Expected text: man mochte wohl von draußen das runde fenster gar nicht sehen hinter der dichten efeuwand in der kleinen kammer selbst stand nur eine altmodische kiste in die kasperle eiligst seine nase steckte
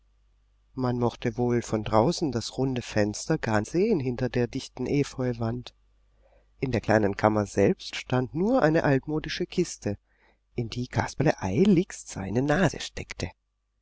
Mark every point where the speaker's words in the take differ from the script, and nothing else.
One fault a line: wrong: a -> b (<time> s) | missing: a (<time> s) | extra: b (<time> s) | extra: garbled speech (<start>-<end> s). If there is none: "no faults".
missing: nicht (3.6 s)